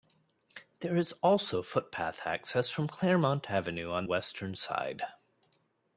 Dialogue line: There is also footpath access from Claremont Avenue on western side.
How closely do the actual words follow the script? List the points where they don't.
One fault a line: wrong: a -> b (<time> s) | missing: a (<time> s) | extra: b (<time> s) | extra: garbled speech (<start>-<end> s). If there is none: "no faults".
no faults